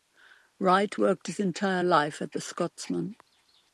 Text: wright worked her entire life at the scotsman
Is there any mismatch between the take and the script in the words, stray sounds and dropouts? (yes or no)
yes